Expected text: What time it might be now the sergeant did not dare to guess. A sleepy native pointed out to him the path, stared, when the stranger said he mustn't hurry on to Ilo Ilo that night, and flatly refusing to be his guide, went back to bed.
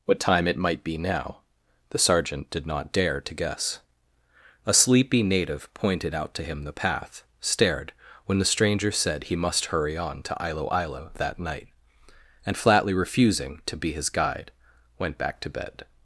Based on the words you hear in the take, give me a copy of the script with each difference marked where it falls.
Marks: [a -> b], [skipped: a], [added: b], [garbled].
What time it might be now the sergeant did not dare to guess. A sleepy native pointed out to him the path, stared, when the stranger said he [mustn't -> must] hurry on to Ilo Ilo that night, and flatly refusing to be his guide, went back to bed.